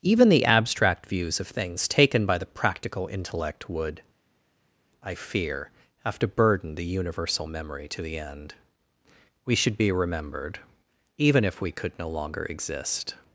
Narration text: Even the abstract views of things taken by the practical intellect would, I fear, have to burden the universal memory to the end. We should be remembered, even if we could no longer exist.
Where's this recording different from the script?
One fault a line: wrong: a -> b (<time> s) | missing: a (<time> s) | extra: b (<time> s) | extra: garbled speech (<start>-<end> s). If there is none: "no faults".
no faults